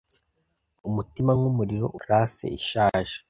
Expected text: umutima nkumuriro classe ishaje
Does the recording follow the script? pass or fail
pass